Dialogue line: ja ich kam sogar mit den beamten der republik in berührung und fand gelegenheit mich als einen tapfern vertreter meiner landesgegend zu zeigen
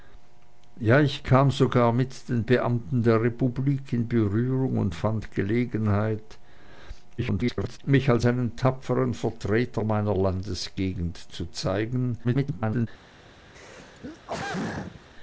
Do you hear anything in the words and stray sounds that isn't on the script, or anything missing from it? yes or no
yes